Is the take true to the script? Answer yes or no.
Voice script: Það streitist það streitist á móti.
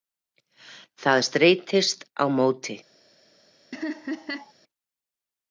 no